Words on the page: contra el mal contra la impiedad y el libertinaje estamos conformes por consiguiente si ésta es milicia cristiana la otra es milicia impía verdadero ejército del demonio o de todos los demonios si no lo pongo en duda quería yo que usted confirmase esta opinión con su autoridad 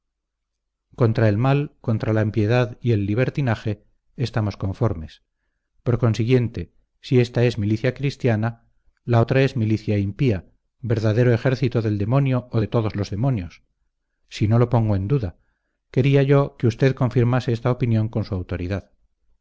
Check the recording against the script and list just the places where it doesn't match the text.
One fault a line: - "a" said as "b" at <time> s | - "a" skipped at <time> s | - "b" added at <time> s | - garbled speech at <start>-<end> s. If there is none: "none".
none